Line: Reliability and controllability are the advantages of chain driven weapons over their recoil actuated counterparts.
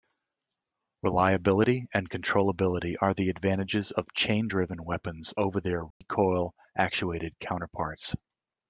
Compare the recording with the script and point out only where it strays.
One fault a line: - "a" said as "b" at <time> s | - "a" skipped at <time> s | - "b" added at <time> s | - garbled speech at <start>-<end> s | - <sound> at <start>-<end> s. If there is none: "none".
- dropout at 5.9-6.0 s